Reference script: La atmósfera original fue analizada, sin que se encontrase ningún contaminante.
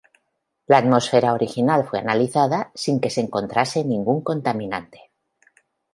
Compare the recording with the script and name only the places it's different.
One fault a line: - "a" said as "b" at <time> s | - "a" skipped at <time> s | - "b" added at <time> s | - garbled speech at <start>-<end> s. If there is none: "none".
none